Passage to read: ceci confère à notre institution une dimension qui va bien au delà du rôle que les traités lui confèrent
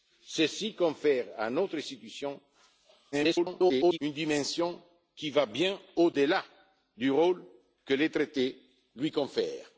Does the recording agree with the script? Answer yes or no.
no